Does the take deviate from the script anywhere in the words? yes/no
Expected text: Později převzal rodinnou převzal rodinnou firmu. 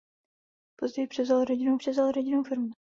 no